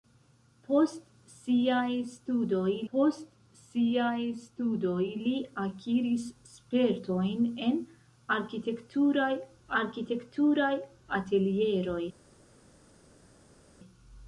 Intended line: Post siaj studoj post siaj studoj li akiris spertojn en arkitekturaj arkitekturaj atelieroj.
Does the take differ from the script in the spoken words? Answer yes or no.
no